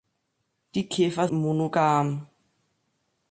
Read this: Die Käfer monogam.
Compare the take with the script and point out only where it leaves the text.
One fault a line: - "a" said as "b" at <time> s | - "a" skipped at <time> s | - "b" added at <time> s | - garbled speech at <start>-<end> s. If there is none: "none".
none